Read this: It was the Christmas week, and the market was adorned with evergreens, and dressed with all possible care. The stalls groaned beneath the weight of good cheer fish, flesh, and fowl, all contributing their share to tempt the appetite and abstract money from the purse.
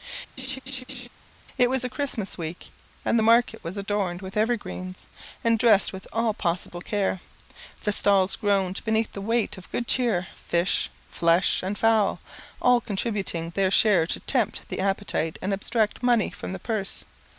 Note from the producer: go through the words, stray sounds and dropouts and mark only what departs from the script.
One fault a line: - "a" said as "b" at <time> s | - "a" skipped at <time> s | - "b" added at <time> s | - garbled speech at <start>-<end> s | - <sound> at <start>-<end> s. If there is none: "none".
- laugh at 0.4-1.1 s